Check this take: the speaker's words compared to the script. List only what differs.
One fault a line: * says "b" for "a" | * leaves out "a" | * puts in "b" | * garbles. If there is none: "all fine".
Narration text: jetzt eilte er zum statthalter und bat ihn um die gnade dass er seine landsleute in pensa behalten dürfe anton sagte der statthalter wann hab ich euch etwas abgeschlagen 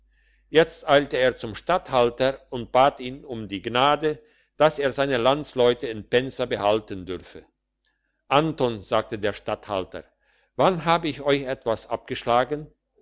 all fine